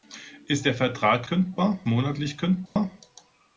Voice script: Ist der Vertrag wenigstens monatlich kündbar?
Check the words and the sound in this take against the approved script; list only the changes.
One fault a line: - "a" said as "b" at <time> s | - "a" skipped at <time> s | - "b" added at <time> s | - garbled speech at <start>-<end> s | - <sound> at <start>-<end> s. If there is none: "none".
- "wenigstens" said as "kündbar" at 1.3 s
- dropout at 2.7-2.8 s